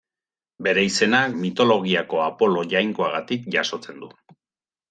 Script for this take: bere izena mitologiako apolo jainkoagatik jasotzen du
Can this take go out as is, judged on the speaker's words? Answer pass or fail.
pass